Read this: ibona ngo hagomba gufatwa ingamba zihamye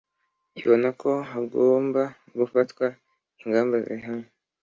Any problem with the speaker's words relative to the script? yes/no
yes